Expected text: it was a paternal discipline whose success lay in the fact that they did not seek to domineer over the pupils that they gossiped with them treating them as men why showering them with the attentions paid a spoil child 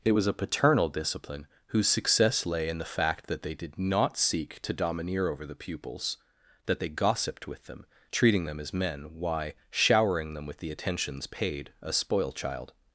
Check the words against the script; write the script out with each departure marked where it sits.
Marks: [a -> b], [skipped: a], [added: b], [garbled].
it was a paternal discipline whose success lay in the fact that they did not seek to domineer over the pupils that they gossiped with them treating them as men why showering them with the attentions paid a spoil child